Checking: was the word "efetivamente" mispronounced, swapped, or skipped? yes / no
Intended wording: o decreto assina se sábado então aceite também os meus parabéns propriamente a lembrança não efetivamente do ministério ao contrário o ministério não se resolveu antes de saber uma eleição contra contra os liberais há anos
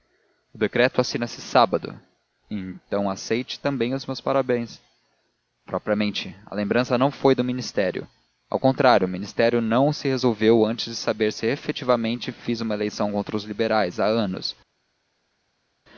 yes